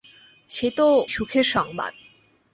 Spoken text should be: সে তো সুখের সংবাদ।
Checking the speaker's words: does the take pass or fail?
pass